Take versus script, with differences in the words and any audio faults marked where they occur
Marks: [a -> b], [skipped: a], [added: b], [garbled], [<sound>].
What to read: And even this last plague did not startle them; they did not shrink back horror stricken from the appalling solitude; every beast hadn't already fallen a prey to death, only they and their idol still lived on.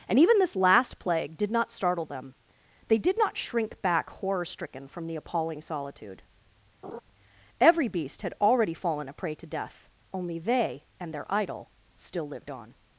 And even this last plague did not startle them; they did not shrink back horror stricken from the appalling solitude; [laugh] every beast [hadn't -> had] already fallen a prey to death, only they and their idol still lived on.